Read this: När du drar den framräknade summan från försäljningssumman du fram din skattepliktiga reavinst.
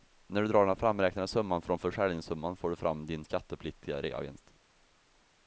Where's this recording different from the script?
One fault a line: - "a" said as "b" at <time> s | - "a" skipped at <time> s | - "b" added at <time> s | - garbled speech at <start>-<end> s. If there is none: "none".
- "får" added at 2.5 s